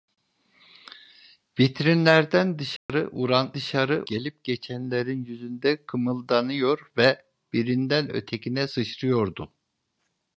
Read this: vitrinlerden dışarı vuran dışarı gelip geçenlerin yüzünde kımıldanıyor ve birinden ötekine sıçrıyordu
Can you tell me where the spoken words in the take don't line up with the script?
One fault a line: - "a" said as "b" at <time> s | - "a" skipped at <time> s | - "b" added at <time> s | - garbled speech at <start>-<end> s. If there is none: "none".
none